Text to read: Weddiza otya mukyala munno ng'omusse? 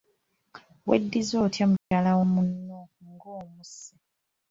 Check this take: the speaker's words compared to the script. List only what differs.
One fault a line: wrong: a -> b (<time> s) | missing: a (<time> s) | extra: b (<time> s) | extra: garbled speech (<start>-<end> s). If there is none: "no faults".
no faults